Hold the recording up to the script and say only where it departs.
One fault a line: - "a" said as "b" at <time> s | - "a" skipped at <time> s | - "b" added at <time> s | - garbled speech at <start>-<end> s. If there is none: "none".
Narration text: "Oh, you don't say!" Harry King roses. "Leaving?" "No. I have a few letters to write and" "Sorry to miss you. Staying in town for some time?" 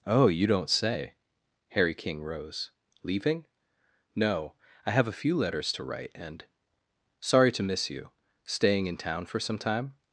- "roses" said as "rose" at 2.2 s